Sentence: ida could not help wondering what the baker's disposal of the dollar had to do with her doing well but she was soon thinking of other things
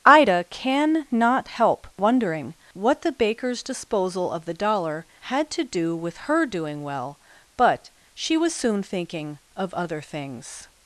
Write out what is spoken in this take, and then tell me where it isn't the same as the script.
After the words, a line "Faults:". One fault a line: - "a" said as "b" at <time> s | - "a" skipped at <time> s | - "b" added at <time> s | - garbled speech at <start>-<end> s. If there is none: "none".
ida can not help wondering what the baker's disposal of the dollar had to do with her doing well but she was soon thinking of other things
Faults:
- "could" said as "can" at 0.5 s